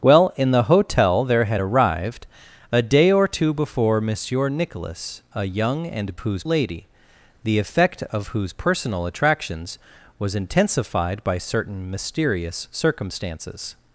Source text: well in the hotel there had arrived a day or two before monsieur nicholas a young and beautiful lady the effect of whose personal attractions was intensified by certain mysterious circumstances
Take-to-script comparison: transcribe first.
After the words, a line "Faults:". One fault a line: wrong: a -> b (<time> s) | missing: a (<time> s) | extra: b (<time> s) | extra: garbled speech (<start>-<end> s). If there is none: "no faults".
well in the hotel there had arrived a day or two before monsieur nicholas a young and whose lady the effect of whose personal attractions was intensified by certain mysterious circumstances
Faults:
wrong: beautiful -> whose (6.2 s)